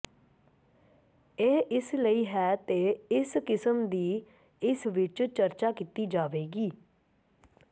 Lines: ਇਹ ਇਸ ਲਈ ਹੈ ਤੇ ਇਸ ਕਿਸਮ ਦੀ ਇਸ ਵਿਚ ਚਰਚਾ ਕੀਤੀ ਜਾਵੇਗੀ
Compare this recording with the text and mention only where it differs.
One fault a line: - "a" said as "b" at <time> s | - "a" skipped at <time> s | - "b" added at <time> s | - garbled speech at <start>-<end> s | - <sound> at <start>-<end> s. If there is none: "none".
none